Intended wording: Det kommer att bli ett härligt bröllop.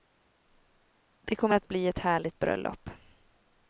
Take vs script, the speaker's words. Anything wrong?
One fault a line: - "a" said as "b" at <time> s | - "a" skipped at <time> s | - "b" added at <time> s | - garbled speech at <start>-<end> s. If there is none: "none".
none